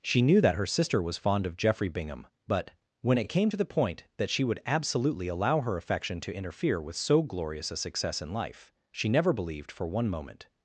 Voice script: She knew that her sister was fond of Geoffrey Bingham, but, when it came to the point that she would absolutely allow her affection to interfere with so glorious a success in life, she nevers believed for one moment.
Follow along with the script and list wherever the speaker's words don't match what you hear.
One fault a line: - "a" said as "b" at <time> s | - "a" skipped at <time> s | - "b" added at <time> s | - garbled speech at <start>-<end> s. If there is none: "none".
- "nevers" said as "never" at 9.1 s